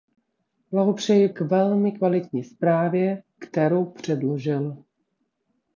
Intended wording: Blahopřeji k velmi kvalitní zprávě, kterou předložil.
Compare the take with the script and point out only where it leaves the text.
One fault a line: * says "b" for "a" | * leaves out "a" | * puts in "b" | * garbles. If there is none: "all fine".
all fine